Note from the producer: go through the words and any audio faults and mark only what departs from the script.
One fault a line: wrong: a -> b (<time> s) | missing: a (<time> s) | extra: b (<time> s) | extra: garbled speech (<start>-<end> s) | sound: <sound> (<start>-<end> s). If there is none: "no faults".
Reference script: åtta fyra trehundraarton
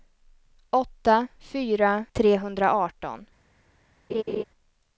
sound: laugh (4.1-4.4 s)